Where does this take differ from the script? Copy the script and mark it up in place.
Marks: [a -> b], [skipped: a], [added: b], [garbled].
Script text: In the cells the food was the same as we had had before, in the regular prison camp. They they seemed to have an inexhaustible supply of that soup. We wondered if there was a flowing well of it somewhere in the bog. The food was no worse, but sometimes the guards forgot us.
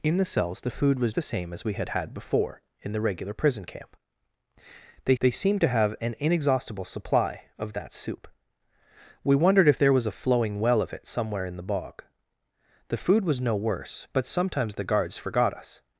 In the cells the food was the same as we had had before, in the regular prison camp. They they seemed to have an inexhaustible supply of that soup. We wondered if there was a flowing well of it somewhere in the bog. The food was no worse, but sometimes the guards forgot us.